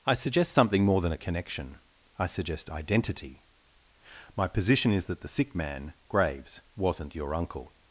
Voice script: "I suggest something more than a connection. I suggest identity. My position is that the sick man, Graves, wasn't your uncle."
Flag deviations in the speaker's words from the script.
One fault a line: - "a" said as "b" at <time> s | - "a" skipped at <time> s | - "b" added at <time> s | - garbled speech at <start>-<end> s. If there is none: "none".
none